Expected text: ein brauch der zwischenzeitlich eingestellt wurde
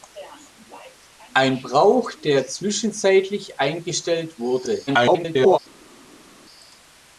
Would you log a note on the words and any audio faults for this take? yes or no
yes